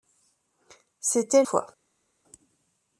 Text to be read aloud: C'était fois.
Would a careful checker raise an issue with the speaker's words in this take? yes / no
no